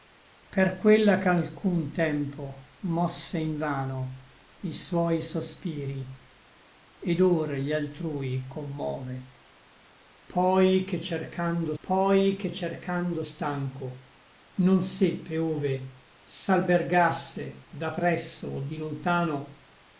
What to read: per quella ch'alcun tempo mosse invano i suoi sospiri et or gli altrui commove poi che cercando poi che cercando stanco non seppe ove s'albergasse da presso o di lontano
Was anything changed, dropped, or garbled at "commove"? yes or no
no